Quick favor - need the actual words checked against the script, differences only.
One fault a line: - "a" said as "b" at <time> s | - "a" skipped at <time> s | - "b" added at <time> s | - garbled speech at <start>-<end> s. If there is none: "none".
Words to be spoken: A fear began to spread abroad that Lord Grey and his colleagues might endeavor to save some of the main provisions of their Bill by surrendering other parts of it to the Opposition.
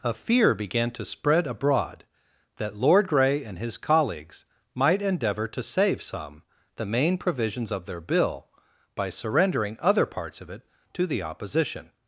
- "of" skipped at 6.4 s